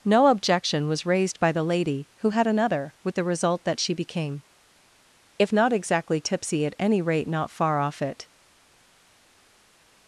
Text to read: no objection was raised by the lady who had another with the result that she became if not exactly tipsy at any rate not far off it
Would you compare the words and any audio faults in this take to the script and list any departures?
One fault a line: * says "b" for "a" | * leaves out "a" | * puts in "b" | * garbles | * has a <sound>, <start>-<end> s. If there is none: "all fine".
all fine